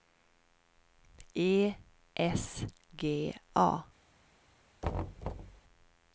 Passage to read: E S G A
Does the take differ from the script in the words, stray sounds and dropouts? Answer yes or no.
yes